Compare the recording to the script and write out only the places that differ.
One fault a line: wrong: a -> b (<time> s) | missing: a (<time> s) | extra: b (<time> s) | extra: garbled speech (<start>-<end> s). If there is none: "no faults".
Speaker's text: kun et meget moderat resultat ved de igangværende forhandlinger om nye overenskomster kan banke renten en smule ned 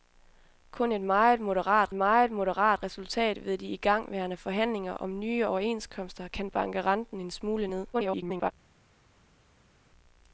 extra: meget moderat (1.9 s)
extra: garbled speech (7.9-8.5 s)